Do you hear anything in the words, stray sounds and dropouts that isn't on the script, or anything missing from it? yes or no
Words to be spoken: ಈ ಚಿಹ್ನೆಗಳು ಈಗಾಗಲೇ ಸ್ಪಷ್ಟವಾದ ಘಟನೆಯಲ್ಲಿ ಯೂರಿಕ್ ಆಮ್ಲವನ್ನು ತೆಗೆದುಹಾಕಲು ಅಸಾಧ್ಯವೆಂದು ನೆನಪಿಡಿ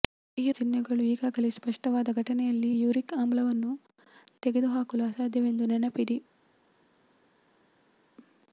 no